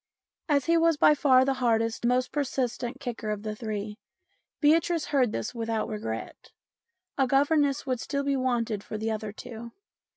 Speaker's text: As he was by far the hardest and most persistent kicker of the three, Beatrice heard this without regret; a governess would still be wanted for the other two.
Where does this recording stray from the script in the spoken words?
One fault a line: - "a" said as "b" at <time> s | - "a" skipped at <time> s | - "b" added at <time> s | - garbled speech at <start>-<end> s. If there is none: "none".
- "and" skipped at 2.1 s